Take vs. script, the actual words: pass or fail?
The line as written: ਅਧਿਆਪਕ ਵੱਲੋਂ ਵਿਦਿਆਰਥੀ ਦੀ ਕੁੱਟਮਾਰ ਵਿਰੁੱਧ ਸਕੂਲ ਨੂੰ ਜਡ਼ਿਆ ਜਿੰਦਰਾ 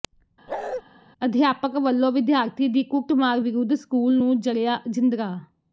pass